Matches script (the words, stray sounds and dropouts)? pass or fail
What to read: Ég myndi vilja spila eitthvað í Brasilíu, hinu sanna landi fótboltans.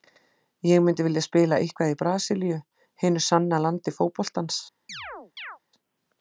fail